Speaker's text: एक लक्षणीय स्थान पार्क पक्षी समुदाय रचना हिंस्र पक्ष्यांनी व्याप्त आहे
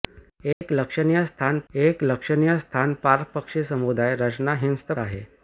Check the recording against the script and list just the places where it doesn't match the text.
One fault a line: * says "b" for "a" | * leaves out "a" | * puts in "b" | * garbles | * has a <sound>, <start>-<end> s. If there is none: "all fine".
* has a dropout, 0.5-0.6 s
* puts in "एक लक्षणीय स्थान"
* leaves out "पक्ष्यांनी व्याप्त"